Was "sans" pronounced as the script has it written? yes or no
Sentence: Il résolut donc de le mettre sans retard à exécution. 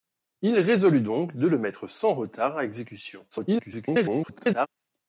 yes